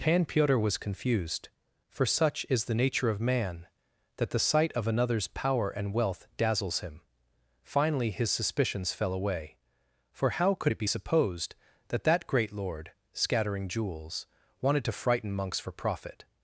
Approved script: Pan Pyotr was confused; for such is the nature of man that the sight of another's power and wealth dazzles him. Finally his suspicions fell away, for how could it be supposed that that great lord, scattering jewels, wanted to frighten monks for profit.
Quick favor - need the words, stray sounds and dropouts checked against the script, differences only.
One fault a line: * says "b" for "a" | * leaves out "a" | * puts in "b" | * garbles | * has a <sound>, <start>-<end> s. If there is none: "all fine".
all fine